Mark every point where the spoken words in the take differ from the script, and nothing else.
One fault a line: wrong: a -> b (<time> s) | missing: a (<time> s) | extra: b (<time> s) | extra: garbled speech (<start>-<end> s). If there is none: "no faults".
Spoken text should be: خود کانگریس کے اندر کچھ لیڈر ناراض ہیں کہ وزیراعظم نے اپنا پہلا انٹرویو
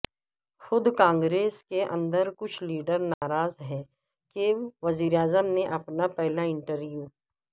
no faults